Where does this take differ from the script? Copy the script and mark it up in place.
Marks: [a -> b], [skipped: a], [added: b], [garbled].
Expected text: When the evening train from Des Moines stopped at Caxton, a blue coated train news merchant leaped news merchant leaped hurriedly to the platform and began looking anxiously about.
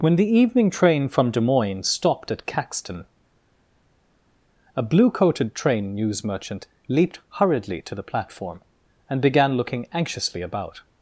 When the evening train from Des Moines stopped at Caxton, a blue coated train news merchant leaped [skipped: news merchant leaped] hurriedly to the platform and began looking anxiously about.